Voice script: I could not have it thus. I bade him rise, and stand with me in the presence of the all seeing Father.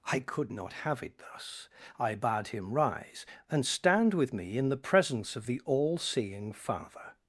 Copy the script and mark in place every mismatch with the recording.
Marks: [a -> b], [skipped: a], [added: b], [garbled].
I could not have it thus. I bade him rise, and stand with me in the presence of the all seeing Father.